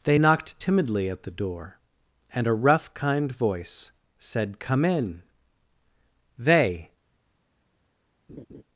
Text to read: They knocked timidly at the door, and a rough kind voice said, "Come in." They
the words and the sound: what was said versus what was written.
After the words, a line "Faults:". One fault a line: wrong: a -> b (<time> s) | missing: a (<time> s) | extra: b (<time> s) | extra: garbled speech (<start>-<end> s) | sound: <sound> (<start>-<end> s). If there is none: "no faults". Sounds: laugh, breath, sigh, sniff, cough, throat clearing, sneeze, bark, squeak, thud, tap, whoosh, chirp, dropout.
They knocked timidly at the door, and a rough kind voice said, "Come in." They
Faults:
sound: laugh (8.3-8.6 s)